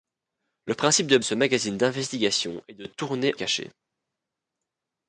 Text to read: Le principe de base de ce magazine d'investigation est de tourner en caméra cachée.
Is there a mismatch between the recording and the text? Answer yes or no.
yes